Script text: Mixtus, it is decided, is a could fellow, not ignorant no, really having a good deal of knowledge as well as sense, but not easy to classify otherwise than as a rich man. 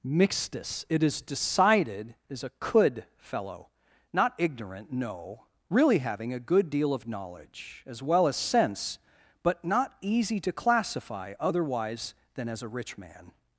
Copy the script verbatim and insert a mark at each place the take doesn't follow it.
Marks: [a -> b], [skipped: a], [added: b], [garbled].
Mixtus, it is decided, is a could fellow, not ignorant no, really having a good deal of knowledge as well as sense, but not easy to classify otherwise than as a rich man.